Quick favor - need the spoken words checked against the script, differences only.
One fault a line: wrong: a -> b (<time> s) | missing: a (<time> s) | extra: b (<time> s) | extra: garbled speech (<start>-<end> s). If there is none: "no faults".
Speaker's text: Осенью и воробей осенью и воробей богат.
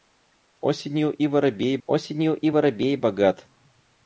no faults